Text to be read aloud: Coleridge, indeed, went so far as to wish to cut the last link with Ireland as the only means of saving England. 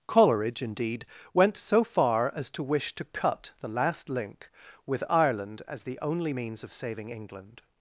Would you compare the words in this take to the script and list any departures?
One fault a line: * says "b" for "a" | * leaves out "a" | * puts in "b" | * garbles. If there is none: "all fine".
all fine